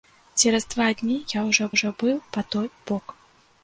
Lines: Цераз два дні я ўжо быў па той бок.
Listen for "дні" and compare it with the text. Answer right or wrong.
right